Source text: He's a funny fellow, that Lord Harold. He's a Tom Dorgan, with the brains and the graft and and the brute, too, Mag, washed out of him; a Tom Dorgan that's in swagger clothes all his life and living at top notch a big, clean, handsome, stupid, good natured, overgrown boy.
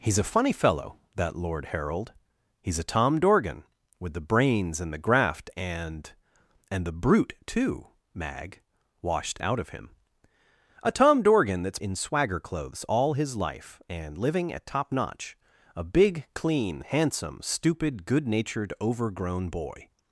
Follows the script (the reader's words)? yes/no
yes